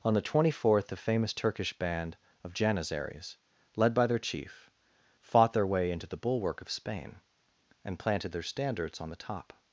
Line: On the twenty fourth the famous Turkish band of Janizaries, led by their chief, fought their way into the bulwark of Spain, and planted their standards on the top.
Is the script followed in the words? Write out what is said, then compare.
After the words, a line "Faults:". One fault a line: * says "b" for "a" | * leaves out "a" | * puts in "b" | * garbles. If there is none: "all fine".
On the twenty fourth the famous Turkish band of Janizaries, led by their chief, fought their way into the bulwark of Spain, and planted their standards on the top.
Faults:
all fine